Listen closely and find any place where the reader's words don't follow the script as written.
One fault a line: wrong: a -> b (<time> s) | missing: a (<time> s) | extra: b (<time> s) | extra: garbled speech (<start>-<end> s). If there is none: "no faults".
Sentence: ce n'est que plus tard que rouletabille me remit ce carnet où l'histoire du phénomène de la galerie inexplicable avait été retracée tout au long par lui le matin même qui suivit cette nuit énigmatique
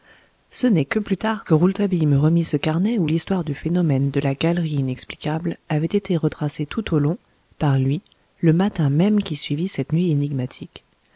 no faults